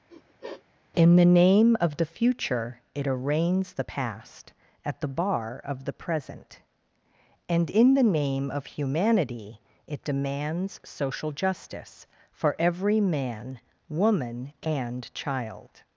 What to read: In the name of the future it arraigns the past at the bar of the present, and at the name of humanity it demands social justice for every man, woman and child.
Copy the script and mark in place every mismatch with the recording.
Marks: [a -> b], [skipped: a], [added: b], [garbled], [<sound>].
[sniff] In the name of the future it arraigns the past at the bar of the present, and [at -> in] the name of humanity it demands social justice for every man, woman and child.